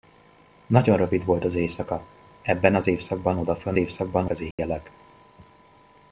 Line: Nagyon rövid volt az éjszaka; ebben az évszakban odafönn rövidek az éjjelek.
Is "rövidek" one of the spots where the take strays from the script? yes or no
yes